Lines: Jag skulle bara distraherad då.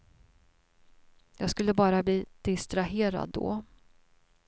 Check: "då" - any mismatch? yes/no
no